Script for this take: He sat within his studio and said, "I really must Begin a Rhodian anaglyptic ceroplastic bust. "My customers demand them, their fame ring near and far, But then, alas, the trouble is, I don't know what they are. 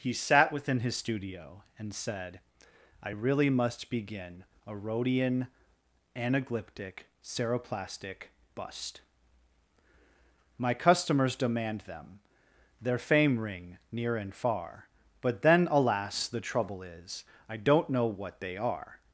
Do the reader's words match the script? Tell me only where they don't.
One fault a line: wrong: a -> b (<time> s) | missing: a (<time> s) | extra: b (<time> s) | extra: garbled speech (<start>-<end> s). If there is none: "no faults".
no faults